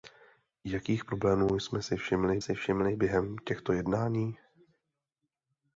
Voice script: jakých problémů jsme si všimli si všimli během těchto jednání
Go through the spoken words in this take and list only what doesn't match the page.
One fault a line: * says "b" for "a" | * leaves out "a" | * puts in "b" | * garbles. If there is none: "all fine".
all fine